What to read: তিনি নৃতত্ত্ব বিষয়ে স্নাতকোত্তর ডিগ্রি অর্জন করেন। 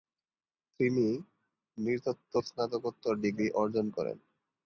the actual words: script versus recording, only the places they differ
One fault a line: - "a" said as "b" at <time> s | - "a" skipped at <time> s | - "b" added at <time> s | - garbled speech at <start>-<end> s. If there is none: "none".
- "বিষয়ে" skipped at 2.3 s